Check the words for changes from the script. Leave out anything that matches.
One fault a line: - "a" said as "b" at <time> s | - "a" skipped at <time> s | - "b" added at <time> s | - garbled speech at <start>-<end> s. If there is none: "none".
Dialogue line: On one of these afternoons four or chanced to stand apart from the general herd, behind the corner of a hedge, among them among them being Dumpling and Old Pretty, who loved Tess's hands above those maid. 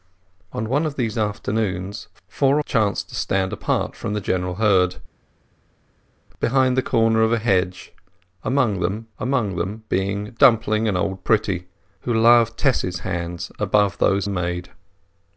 none